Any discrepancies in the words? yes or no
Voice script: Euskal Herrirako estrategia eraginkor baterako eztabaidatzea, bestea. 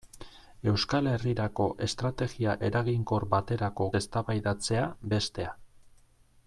no